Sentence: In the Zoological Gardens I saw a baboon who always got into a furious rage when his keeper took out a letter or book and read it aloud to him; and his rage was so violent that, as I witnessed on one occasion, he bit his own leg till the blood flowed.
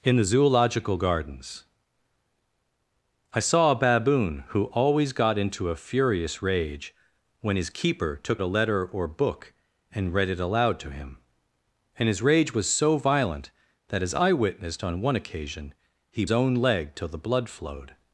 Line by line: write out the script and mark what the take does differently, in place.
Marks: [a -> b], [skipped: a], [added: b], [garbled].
In the Zoological Gardens I saw a baboon who always got into a furious rage when his keeper took [skipped: out] a letter or book and read it aloud to him; and his rage was so violent that, as I witnessed on one occasion, he [skipped: bit his] own leg till the blood flowed.